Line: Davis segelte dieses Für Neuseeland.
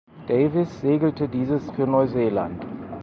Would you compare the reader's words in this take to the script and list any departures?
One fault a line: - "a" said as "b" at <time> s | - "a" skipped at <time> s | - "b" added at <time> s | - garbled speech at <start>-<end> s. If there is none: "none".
none